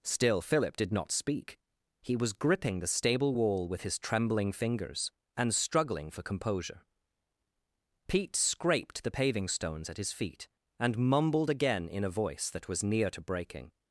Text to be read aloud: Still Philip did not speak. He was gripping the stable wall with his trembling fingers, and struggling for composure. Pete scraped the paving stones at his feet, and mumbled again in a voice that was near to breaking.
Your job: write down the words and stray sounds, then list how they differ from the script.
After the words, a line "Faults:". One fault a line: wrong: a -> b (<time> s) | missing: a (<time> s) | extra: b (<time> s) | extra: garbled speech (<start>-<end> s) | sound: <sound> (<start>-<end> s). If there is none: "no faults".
Still Philip did not speak. He was gripping the stable wall with his trembling fingers, and struggling for composure. Pete scraped the paving stones at his feet, and mumbled again in a voice that was near to breaking.
Faults:
no faults